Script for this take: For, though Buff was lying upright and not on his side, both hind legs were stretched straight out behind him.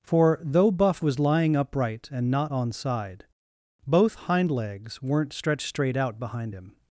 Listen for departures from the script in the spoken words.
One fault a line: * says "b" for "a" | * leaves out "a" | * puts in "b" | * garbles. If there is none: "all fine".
* leaves out "his"
* says "weren't" for "were"